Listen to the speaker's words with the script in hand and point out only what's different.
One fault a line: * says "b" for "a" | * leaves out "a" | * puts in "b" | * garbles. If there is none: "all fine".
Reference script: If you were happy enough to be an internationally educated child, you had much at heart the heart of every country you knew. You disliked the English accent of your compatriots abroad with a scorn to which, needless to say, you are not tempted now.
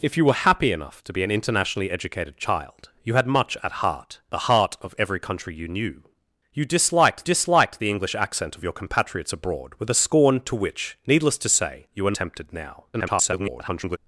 * puts in "disliked"
* leaves out "not"
* garbles